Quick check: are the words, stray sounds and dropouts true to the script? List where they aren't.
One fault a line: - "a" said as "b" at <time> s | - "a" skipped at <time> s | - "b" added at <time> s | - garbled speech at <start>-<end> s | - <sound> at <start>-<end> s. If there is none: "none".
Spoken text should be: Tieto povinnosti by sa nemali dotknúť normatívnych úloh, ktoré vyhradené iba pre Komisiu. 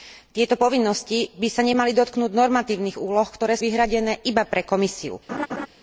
- laugh at 5.3-5.7 s